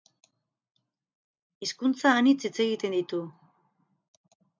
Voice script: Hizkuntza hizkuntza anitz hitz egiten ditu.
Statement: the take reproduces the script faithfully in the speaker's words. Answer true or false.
false